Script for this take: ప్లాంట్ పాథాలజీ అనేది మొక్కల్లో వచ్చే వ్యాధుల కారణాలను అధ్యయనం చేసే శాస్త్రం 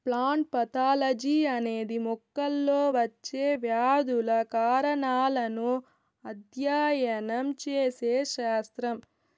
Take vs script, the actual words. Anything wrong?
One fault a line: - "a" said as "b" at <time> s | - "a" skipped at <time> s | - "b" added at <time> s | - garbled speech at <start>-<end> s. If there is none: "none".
none